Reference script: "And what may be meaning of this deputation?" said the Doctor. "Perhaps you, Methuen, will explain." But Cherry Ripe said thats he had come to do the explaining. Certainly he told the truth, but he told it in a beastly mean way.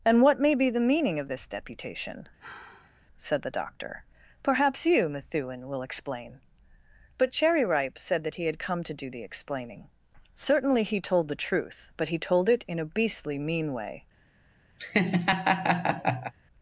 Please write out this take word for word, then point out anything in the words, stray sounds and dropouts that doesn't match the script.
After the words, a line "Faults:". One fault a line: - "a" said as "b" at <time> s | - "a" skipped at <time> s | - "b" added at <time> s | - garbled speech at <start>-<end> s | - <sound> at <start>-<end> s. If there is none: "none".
"And what may be the meaning of this deputation?" said the Doctor. "Perhaps you, Methuen, will explain." But Cherry Ripe said that he had come to do the explaining. Certainly he told the truth, but he told it in a beastly mean way.
Faults:
- "the" added at 0.7 s
- sigh at 2.4-3.1 s
- "thats" said as "that" at 8.2 s
- laugh at 14.8-16.3 s